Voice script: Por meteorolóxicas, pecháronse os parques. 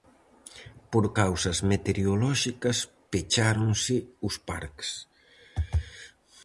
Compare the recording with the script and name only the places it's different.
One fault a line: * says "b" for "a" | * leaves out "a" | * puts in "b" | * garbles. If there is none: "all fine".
* puts in "causas"